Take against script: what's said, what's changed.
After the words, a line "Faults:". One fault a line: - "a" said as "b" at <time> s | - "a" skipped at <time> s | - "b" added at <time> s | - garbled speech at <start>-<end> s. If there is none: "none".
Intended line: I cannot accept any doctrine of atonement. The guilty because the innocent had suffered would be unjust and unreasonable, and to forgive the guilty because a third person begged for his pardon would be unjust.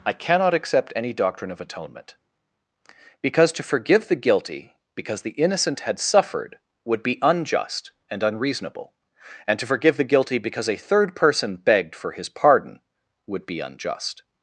I cannot accept any doctrine of atonement. Because to forgive the guilty because the innocent had suffered would be unjust and unreasonable, and to forgive the guilty because a third person begged for his pardon would be unjust.
Faults:
- "Because to forgive" added at 3.2 s